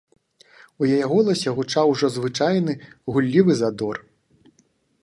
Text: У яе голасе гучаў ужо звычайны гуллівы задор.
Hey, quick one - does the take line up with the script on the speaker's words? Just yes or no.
yes